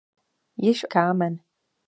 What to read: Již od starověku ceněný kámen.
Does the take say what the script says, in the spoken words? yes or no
no